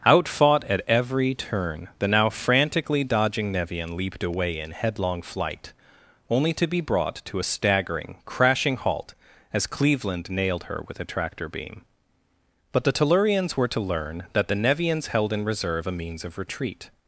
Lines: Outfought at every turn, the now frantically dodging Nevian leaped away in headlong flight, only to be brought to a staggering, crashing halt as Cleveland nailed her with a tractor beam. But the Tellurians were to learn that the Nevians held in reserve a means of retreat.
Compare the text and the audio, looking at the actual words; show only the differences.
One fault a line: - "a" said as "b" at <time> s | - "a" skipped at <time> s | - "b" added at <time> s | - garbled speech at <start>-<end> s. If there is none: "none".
none